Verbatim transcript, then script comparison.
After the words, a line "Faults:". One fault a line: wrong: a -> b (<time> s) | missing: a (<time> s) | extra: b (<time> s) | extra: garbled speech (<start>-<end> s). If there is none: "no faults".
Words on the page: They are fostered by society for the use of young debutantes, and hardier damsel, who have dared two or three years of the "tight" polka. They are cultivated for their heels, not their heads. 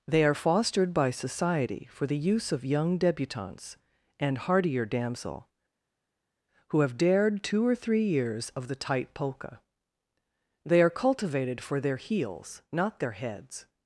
They are fostered by society for the use of young debutantes, and hardier damsel, who have dared two or three years of the "tight" polka. They are cultivated for their heels, not their heads.
Faults:
no faults